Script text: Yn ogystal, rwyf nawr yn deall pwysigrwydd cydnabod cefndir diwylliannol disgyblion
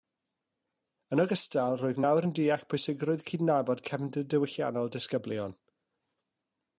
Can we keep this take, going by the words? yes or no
yes